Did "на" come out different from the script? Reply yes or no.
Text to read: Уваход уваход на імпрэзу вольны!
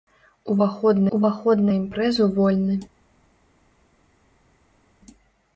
no